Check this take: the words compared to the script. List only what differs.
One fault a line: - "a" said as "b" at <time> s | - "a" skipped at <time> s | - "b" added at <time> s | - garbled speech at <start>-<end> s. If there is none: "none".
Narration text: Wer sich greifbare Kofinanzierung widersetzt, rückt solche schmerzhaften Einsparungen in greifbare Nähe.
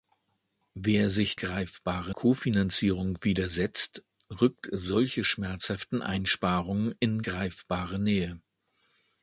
none